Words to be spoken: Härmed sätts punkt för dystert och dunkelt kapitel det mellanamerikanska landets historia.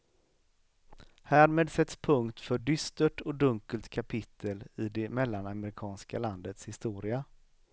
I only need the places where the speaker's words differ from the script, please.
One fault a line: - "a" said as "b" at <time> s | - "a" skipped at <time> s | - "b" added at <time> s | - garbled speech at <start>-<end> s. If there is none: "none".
- "i" added at 4.8 s